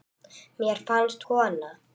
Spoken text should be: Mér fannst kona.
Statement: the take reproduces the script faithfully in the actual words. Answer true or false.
true